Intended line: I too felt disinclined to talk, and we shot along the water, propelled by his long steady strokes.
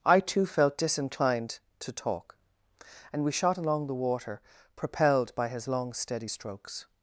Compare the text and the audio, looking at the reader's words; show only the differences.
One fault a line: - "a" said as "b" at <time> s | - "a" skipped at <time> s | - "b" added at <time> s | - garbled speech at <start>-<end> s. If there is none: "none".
none